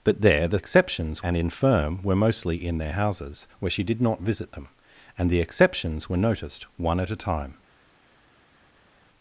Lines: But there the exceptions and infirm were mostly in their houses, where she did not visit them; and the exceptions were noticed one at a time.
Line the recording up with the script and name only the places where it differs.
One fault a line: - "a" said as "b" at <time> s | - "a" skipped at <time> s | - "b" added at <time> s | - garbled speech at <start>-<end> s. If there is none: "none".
none